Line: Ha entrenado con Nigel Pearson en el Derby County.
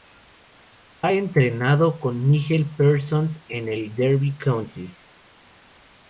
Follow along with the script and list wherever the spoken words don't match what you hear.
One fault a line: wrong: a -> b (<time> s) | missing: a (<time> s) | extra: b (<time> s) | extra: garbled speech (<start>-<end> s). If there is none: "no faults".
no faults